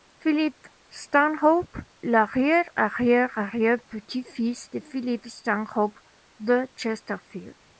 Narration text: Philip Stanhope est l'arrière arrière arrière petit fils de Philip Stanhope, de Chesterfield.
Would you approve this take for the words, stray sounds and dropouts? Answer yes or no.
no